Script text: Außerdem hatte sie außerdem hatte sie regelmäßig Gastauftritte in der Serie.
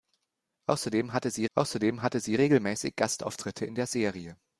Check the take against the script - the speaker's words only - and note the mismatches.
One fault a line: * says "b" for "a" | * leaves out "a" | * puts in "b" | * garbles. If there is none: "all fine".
all fine